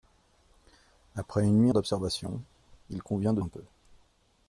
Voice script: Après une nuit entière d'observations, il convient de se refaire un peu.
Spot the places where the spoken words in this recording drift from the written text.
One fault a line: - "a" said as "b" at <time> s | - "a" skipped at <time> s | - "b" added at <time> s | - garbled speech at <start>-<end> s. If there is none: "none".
- "entière" skipped at 1.7 s
- "se refaire" skipped at 3.4 s